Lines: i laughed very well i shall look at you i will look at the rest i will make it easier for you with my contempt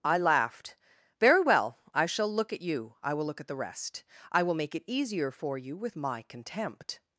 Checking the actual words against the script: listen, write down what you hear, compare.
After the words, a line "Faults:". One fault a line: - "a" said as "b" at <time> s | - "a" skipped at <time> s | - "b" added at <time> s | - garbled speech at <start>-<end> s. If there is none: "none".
i laughed very well i shall look at you i will look at the rest i will make it easier for you with my contempt
Faults:
none